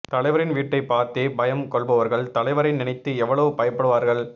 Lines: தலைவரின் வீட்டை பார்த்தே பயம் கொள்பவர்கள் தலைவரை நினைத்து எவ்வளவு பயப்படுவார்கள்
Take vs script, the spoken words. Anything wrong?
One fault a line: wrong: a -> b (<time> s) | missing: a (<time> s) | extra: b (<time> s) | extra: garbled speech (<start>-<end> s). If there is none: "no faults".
no faults